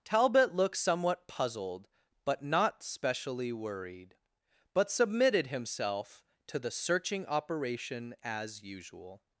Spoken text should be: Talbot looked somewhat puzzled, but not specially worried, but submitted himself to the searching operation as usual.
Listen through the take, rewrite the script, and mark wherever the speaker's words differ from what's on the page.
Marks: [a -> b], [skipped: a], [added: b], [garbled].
Talbot looked somewhat puzzled, but not specially worried, but submitted himself to the searching operation as usual.